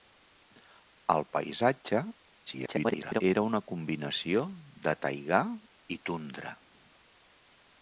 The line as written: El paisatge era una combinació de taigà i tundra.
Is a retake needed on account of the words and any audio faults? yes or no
yes